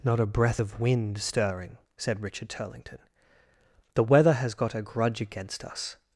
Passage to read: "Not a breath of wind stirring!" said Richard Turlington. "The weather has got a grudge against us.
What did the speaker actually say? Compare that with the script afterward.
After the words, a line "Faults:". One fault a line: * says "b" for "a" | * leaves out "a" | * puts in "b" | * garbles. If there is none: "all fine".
"Not a breath of wind stirring!" said Richard Turlington. "The weather has got a grudge against us.
Faults:
all fine